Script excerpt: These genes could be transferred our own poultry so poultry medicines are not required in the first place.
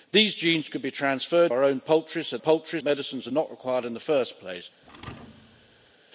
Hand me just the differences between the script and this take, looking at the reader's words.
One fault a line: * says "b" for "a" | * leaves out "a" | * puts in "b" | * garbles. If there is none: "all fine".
all fine